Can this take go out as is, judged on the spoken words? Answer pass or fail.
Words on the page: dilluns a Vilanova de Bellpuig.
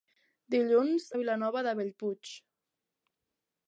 pass